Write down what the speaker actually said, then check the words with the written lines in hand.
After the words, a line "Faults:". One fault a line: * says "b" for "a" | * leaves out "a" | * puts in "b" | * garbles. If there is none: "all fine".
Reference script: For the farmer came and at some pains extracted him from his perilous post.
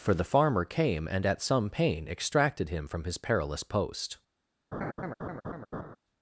For the farmer came and at some pain extracted him from his perilous post.
Faults:
* says "pain" for "pains"